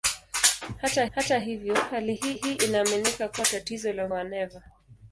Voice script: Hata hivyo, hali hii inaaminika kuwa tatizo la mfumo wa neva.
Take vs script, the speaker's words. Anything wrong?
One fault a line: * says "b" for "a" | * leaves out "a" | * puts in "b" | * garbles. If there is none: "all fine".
* puts in "hata"
* puts in "hii"
* leaves out "mfumo"